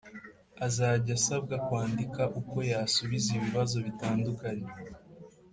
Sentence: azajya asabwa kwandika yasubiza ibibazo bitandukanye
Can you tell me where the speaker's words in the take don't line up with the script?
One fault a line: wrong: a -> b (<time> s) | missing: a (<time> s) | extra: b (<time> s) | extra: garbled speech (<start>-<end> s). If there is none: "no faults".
extra: uko (2.4 s)